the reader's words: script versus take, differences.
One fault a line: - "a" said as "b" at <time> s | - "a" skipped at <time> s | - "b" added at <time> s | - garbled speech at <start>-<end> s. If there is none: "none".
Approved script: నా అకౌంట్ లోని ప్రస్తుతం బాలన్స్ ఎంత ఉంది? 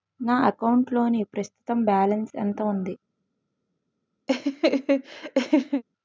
none